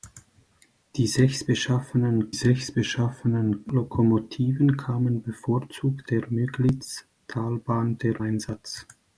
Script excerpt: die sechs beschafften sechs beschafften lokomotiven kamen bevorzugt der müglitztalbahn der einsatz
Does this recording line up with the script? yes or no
yes